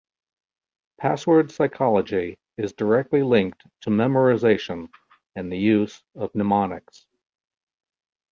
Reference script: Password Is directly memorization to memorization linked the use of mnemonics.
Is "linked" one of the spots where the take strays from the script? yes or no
yes